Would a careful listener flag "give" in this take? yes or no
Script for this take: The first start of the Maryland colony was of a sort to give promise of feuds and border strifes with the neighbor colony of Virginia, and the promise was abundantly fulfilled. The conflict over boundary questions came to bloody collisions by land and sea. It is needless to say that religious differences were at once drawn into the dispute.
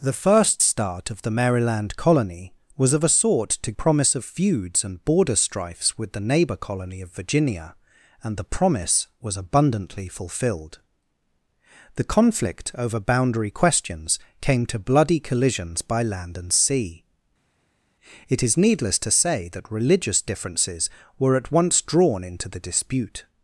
yes